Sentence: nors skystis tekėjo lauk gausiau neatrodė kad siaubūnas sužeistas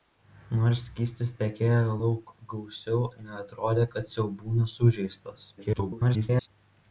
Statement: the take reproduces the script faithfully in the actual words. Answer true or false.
false